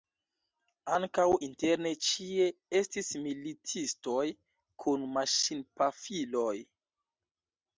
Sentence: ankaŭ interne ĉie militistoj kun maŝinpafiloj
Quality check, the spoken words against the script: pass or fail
fail